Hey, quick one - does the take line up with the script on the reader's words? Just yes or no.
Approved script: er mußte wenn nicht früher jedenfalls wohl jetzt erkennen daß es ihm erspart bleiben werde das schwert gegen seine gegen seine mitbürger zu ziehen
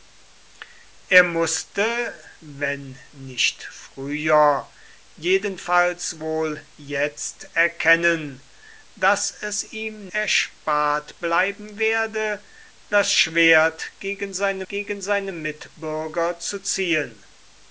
yes